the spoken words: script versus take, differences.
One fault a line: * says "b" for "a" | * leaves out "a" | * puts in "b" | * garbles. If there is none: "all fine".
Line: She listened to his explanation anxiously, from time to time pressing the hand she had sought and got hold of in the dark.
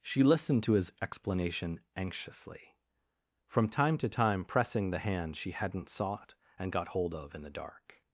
* says "hadn't" for "had"